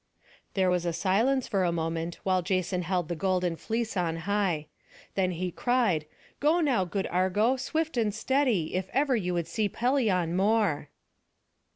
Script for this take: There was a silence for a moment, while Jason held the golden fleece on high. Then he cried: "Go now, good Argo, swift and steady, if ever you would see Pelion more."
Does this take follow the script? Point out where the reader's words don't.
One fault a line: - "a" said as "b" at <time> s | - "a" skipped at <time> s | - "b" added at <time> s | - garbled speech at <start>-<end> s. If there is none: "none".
none